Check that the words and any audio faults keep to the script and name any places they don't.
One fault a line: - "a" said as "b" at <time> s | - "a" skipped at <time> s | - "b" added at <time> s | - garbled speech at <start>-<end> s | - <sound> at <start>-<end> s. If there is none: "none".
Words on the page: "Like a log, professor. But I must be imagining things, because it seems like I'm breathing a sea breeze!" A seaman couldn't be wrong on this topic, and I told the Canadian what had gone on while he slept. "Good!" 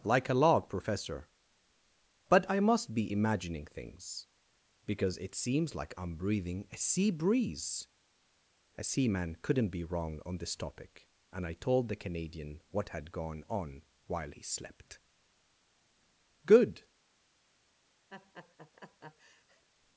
- laugh at 18.1-19.6 s